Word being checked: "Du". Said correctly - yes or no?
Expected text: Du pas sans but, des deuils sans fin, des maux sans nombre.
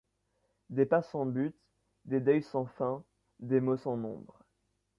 no